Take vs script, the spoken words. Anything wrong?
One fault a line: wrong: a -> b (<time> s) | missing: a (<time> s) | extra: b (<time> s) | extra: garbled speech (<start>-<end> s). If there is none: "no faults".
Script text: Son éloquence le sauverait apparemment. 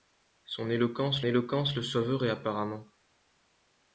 extra: éloquence (1.3 s)